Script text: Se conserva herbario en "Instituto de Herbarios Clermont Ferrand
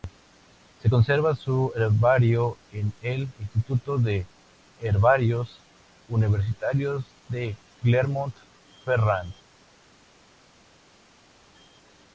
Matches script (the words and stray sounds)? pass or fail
fail